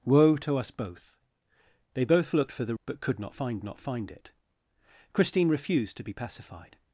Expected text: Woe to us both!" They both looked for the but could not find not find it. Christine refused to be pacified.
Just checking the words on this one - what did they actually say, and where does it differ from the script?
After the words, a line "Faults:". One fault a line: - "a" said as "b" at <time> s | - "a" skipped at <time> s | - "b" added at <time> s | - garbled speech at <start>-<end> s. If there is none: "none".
Woe to us both!" They both looked for the but could not find not find it. Christine refused to be pacified.
Faults:
none